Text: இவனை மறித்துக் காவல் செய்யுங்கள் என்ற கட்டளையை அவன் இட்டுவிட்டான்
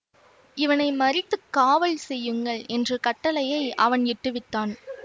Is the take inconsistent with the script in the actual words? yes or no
no